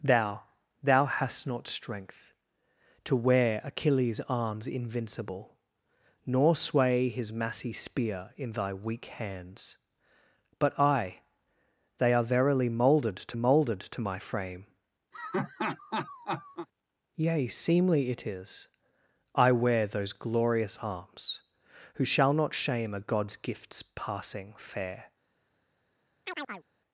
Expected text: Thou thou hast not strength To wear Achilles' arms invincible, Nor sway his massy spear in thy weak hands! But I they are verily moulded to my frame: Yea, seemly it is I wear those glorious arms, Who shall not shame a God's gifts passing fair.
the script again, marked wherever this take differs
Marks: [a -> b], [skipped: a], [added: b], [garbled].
Thou thou hast not strength To wear Achilles' arms invincible, Nor sway his massy spear in thy weak hands! But I they are verily moulded to [added: moulded to] my frame: Yea, seemly it is I wear those glorious arms, Who shall not shame a God's gifts passing fair.